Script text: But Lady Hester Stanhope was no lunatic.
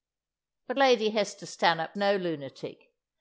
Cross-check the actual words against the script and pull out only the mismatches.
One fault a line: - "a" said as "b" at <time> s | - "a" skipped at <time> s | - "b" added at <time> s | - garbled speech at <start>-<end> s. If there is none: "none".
- "was" skipped at 2.0 s